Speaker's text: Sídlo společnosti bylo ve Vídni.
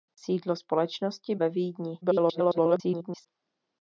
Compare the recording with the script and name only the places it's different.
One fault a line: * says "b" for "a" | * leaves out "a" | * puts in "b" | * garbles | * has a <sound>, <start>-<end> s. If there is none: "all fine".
* leaves out "bylo"
* garbles